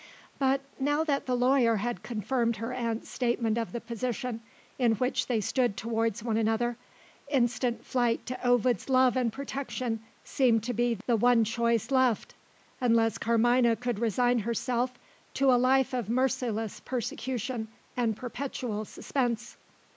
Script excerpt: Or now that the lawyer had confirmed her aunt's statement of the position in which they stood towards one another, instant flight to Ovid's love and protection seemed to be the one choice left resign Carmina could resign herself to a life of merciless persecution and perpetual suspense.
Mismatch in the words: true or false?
true